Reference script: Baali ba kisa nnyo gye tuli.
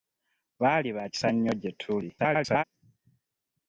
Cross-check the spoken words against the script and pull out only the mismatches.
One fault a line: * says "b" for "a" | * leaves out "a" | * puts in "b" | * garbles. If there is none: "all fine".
* garbles